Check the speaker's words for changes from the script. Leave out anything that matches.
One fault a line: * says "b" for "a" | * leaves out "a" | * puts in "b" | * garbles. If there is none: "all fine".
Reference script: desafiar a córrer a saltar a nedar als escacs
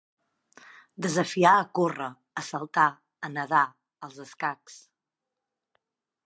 all fine